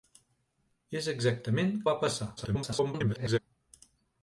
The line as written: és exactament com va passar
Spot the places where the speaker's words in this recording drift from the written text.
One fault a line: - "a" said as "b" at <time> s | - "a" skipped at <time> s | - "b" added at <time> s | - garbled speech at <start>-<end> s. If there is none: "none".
- "com" skipped at 1.8 s
- garbled speech at 2.4-3.4 s